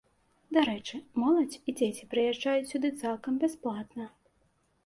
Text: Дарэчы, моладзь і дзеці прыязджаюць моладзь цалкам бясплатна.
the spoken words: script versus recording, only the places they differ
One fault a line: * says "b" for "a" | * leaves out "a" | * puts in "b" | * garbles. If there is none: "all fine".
* says "сюды" for "моладзь"